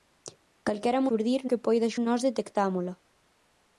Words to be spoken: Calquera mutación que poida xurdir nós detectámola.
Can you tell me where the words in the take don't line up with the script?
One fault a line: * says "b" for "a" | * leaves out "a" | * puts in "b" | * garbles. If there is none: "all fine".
* says "xurdir" for "mutación"
* leaves out "xurdir"